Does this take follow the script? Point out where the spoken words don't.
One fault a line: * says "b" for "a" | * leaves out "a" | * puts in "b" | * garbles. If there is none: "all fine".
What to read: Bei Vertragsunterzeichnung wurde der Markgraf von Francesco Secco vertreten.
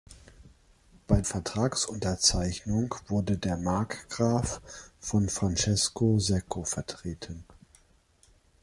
all fine